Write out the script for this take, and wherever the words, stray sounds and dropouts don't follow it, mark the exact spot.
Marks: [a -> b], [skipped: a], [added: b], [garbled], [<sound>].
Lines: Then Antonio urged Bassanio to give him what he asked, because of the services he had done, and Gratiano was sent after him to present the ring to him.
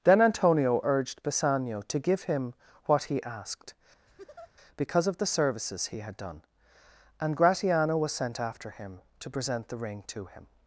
Then Antonio urged Bassanio to give him what he asked, [laugh] because of the services he had done, and Gratiano was sent after him to present the ring to him.